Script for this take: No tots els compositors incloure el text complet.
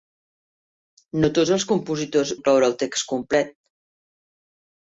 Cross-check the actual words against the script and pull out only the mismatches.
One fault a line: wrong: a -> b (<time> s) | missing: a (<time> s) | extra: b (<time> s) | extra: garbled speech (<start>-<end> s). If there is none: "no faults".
no faults